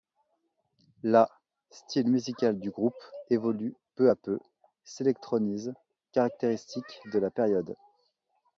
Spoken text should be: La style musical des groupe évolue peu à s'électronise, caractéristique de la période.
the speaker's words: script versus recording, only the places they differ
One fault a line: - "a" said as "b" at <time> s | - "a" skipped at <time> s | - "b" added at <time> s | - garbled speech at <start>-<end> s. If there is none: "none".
- "des" said as "du" at 2.6 s
- "peu" added at 4.1 s